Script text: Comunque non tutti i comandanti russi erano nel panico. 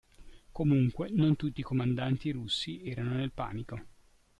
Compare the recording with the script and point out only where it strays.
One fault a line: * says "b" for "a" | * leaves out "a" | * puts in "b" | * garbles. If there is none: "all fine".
all fine